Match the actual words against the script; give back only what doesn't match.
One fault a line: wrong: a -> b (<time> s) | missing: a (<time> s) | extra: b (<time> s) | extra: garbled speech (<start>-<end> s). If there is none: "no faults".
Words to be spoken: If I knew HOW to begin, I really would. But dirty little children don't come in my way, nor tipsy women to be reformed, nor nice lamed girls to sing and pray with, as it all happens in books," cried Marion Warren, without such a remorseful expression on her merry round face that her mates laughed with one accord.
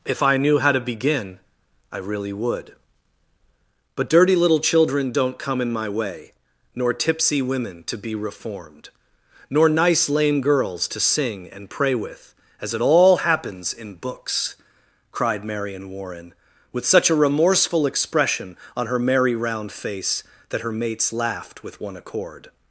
wrong: lamed -> lame (10.1 s)
wrong: without -> with (16.7 s)